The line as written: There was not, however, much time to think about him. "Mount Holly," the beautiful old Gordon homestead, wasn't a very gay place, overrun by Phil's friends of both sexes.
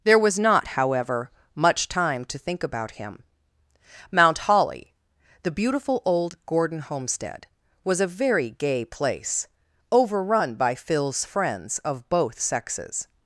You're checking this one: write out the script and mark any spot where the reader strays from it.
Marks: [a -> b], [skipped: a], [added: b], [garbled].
There was not, however, much time to think about him. "Mount Holly," the beautiful old Gordon homestead, [wasn't -> was] a very gay place, overrun by Phil's friends of both sexes.